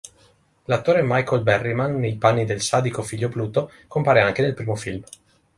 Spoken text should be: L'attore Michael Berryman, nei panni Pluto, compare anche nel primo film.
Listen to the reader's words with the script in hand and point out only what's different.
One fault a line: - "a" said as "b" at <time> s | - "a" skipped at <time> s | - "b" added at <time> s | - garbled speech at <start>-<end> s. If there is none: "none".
- "del sadico figlio" added at 2.4 s